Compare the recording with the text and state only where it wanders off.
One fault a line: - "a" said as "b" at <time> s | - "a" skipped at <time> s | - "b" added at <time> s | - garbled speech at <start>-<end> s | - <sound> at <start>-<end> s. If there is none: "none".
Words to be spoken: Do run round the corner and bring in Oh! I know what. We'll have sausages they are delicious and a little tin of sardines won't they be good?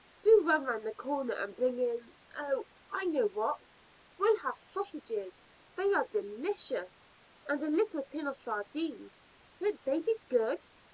none